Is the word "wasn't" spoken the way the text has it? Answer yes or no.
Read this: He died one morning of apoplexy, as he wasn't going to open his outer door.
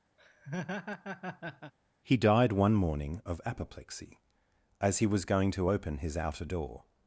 no